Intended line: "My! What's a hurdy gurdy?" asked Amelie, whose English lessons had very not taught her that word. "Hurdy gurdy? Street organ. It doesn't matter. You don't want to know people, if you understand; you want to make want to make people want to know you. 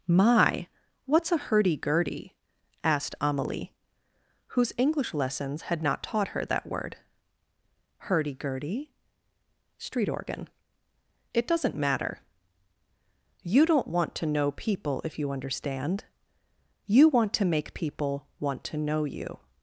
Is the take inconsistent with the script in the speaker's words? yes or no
yes